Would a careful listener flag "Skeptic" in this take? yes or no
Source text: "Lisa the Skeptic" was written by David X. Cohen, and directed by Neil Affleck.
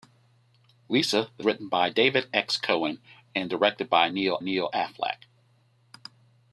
yes